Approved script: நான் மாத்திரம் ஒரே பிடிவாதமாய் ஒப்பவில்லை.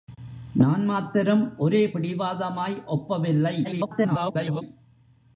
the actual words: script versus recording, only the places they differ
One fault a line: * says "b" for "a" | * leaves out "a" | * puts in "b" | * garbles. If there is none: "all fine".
* garbles